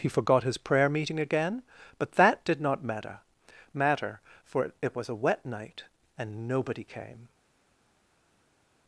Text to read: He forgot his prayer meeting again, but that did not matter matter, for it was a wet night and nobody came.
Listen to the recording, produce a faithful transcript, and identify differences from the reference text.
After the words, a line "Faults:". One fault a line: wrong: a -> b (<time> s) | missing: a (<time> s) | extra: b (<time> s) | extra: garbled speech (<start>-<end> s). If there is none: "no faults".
He forgot his prayer meeting again, but that did not matter matter, for it was a wet night and nobody came.
Faults:
no faults